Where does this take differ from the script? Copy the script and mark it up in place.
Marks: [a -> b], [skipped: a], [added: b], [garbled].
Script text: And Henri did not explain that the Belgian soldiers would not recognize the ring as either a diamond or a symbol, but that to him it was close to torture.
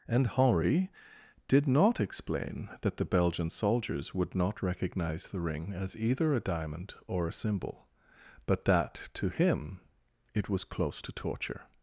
And Henri did not explain that the Belgian soldiers would not recognize the ring as either a diamond or a symbol, but that to him it was close to torture.